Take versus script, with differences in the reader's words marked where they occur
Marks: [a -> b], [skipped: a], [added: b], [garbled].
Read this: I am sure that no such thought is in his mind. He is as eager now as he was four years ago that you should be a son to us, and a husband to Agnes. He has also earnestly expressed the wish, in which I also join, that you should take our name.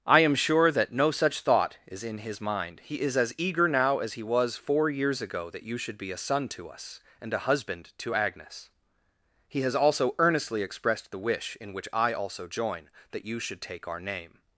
I am sure that no such thought is in his mind. He is as eager now as he was four years ago that you should be a son to us, and a husband to Agnes. He has also earnestly expressed the wish, in which I also join, that you should take our name.